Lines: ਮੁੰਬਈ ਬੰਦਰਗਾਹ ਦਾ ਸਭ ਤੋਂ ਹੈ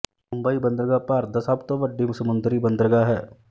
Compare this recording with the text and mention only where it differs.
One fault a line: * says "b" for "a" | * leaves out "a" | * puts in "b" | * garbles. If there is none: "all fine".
* puts in "ਭਾਰਤ"
* puts in "ਵੱਡੀ ਸਮੁੰਦਰੀ ਬੰਦਰਗਾਹ"